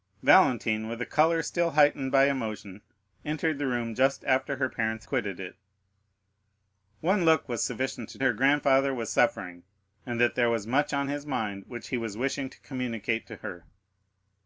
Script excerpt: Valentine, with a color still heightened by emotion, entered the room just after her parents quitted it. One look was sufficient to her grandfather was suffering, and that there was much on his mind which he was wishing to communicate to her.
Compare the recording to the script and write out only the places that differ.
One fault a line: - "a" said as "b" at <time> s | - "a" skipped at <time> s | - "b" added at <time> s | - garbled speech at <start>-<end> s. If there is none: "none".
none